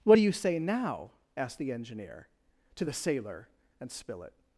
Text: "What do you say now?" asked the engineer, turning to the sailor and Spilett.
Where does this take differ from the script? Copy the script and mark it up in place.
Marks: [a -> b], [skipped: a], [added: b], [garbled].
"What do you say now?" asked the engineer, [skipped: turning] to the sailor and Spilett.